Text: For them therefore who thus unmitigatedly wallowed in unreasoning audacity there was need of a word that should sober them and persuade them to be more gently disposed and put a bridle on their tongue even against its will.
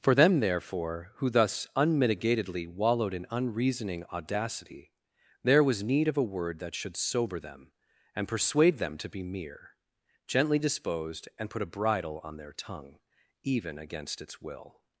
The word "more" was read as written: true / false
false